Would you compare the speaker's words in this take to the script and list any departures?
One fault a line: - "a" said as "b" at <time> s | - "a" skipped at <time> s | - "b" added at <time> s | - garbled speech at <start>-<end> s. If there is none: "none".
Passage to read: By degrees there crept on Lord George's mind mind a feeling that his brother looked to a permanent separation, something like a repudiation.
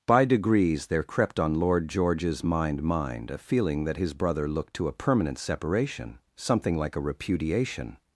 none